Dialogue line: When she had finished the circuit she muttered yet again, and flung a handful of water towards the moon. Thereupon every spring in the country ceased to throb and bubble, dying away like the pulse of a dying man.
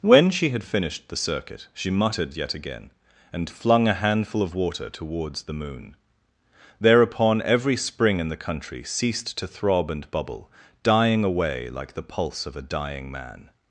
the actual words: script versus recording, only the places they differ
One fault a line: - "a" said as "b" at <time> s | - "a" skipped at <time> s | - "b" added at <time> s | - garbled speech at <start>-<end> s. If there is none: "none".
none